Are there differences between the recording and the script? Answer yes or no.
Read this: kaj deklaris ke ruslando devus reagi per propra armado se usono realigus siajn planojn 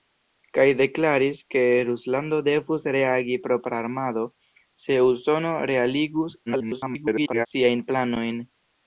yes